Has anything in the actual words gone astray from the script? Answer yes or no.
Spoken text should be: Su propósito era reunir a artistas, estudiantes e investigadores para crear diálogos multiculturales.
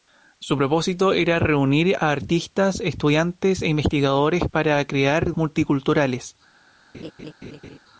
yes